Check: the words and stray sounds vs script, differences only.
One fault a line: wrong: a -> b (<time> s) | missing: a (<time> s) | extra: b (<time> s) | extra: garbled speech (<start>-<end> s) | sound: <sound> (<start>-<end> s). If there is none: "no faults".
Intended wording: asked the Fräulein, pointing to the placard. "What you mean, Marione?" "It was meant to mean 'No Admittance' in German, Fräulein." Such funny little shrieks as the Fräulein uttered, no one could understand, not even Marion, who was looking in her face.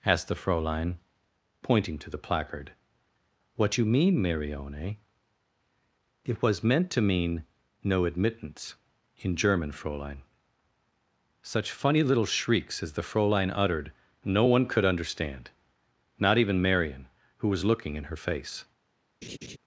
sound: laugh (19.2-19.6 s)